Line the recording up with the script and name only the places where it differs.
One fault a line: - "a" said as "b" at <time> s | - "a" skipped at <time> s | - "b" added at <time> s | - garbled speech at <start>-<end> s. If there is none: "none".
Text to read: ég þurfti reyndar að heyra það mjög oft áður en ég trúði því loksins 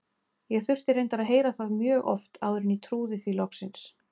none